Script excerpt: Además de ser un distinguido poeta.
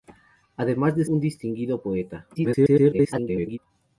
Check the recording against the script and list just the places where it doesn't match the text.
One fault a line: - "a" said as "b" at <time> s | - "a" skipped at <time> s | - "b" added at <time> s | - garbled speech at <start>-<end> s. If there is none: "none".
- "ser" skipped at 1.1 s
- garbled speech at 2.3-3.6 s